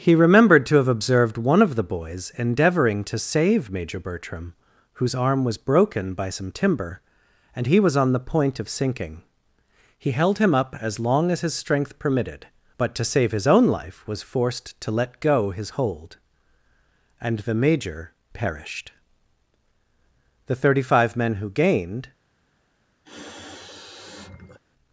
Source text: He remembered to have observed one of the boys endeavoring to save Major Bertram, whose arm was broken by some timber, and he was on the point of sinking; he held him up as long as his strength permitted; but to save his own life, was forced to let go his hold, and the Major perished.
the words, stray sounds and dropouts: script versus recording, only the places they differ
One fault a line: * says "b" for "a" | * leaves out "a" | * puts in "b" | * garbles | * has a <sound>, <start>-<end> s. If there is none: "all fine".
* puts in "The thirty five men who gained"
* has a sniff, 23.0-24.6 s